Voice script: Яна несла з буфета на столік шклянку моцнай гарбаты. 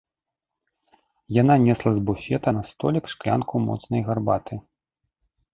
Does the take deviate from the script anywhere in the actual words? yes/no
no